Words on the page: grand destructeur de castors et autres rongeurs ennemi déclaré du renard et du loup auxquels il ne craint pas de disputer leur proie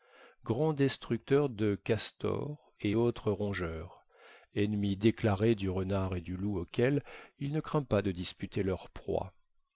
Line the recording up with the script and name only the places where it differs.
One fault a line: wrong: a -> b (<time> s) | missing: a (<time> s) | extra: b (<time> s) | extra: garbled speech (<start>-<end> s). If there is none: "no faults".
no faults